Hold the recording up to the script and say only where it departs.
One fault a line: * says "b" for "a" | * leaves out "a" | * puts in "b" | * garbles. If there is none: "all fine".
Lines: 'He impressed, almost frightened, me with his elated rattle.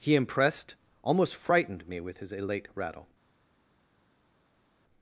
* says "elate" for "elated"